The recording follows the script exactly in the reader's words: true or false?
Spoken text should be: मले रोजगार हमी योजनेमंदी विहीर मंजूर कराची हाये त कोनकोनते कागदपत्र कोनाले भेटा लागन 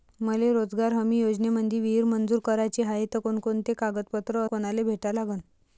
true